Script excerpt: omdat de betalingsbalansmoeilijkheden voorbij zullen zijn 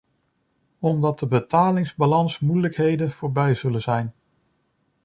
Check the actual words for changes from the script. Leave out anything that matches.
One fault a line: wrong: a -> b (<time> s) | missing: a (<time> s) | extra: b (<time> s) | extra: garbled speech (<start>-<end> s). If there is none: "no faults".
no faults